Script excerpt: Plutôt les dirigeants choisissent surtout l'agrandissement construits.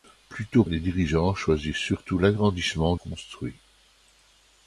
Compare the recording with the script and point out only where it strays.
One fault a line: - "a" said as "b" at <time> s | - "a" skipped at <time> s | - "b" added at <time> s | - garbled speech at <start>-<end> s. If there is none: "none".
none